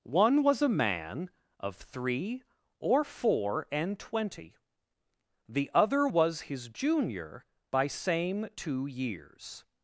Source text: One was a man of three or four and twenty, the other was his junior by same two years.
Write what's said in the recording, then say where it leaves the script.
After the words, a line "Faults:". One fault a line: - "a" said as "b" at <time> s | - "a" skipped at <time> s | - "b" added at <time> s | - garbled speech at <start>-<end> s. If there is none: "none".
One was a man of three or four and twenty, the other was his junior by same two years.
Faults:
none